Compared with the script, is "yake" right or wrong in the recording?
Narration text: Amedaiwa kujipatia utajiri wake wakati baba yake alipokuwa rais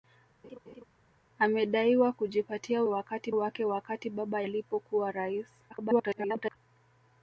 wrong